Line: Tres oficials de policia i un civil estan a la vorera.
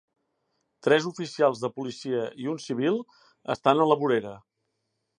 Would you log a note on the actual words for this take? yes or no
no